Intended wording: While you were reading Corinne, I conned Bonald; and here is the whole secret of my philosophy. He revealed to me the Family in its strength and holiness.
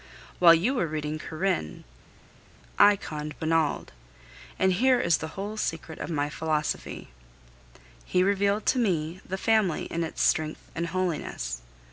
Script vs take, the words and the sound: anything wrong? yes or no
no